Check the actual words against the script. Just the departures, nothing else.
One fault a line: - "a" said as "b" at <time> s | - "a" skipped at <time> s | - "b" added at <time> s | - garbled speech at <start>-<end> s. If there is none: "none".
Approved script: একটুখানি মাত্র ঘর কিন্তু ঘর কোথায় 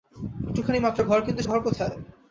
none